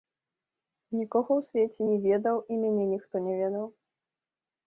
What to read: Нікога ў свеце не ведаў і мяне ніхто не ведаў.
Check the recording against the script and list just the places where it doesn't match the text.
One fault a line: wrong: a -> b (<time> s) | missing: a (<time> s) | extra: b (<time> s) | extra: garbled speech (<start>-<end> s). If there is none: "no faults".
no faults